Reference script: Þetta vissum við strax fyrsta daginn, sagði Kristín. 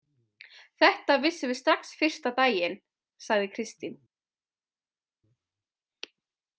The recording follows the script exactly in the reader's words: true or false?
true